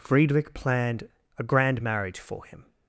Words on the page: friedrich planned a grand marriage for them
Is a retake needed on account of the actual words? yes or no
yes